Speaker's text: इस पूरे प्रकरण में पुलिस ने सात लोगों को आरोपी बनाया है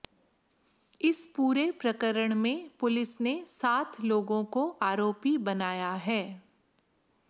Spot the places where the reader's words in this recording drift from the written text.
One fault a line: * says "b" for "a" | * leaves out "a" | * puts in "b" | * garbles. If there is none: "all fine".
all fine